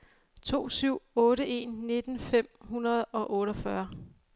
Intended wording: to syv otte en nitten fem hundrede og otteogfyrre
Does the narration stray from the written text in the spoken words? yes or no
no